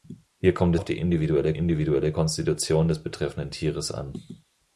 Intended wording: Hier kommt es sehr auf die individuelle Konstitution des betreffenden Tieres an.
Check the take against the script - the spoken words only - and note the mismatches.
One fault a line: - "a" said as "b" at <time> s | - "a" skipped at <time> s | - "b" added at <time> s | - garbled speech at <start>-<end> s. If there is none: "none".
- "es sehr" skipped at 0.8 s
- "individuelle" added at 1.5 s